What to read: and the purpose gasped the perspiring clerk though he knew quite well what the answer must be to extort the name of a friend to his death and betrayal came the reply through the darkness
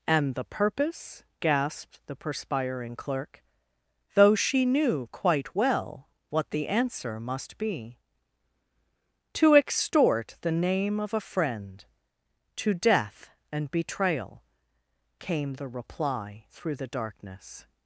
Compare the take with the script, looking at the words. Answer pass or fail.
fail